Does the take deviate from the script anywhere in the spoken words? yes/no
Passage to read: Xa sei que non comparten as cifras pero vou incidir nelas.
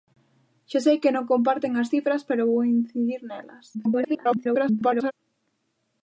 yes